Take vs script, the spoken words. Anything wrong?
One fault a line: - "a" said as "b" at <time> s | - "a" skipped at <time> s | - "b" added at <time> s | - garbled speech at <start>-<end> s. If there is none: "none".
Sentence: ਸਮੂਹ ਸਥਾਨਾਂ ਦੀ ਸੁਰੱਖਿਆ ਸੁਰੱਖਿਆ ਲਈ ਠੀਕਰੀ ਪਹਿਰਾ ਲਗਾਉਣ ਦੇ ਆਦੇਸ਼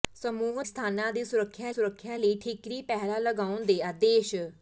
none